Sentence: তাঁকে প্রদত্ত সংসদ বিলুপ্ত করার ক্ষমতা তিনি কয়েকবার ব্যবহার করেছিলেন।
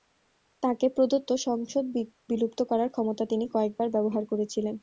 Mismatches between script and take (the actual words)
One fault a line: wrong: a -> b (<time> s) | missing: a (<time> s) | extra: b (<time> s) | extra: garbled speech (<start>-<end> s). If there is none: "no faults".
no faults